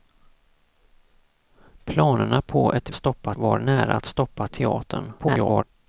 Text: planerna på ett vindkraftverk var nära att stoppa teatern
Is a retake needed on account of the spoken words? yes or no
yes